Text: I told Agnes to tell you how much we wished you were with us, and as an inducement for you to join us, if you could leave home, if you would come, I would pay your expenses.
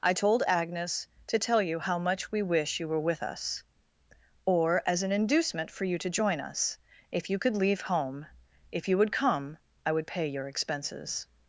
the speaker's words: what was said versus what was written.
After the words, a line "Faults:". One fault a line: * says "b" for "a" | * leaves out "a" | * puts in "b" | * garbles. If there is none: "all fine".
I told Agnes to tell you how much we wish you were with us, or as an inducement for you to join us, if you could leave home, if you would come, I would pay your expenses.
Faults:
* says "wish" for "wished"
* says "or" for "and"